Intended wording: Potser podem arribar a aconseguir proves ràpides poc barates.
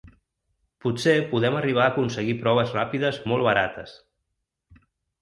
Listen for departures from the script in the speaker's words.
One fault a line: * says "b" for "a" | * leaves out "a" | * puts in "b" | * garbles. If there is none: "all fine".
* says "molt" for "poc"